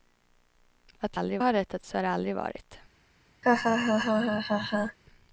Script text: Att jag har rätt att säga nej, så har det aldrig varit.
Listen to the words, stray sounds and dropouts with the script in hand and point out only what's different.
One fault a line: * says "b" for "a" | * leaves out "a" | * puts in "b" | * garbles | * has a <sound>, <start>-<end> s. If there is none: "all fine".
* says "aldrig" for "jag"
* leaves out "säga nej"
* has a laugh, 3.4-5.0 s